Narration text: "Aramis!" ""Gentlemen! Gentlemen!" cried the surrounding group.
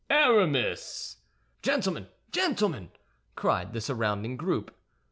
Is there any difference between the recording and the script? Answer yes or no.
no